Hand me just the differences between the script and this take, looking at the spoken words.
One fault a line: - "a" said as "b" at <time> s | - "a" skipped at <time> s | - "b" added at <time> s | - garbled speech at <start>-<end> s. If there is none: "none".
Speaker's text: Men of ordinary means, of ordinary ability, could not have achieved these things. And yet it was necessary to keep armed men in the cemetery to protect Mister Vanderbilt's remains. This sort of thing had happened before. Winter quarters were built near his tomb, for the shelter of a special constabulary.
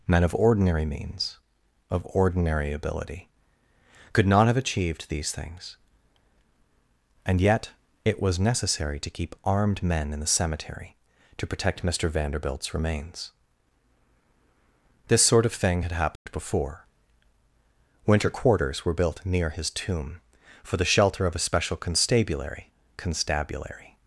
- "constabulary" added at 23.0 s